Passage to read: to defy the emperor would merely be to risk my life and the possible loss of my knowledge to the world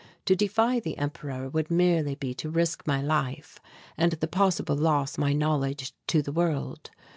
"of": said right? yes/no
no